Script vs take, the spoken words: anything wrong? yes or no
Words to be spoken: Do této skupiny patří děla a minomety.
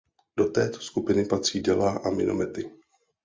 no